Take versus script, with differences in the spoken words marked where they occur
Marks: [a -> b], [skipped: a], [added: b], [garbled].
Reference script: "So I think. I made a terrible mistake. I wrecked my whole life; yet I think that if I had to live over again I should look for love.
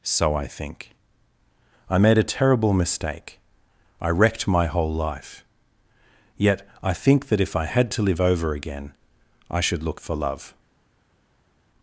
"So I think. I made a terrible mistake. I wrecked my whole life; yet I think that if I had to live over again I should look for love.